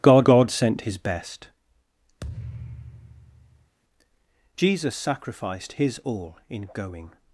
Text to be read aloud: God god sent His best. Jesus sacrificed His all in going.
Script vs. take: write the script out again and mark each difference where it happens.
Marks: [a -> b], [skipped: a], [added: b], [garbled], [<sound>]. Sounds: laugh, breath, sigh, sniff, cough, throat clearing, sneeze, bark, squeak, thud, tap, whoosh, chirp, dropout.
God god sent His best. [thud] Jesus sacrificed His all in going.